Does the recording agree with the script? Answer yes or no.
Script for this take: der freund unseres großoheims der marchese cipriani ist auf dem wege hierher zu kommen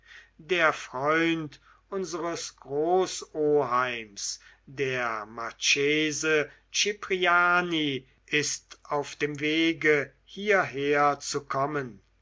yes